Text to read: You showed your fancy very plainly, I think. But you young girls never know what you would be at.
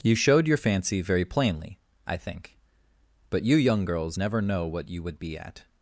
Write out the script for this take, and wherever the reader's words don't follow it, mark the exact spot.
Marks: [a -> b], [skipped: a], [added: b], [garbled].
You showed your fancy very plainly, I think. But you young girls never know what you would be at.